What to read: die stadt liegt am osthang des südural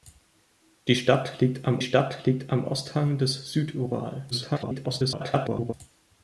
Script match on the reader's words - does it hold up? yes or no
no